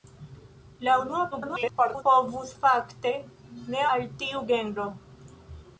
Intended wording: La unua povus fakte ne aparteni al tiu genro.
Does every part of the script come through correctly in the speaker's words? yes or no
no